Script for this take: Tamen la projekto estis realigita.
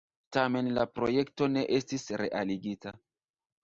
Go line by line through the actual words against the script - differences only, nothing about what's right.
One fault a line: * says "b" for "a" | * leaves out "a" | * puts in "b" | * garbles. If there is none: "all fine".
* puts in "ne"